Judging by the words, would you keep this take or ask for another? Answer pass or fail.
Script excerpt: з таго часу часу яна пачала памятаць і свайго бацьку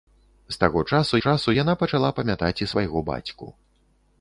pass